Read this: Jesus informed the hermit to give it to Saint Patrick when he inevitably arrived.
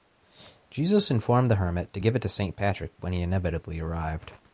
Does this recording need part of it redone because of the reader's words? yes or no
no